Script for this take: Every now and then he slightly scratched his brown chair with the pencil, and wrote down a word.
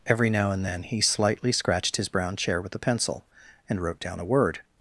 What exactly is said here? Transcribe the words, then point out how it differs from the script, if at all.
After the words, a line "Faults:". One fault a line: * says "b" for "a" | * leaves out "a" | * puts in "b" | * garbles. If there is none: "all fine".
Every now and then he slightly scratched his brown chair with the pencil, and wrote down a word.
Faults:
all fine